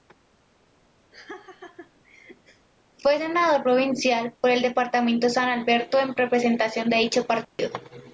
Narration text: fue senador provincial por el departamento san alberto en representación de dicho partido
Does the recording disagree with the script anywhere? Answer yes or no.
no